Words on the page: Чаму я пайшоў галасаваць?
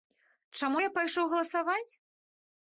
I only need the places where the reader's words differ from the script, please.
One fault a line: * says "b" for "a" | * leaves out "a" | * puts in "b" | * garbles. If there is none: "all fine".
all fine